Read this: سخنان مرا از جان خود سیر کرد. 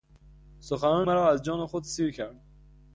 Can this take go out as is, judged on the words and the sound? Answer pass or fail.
pass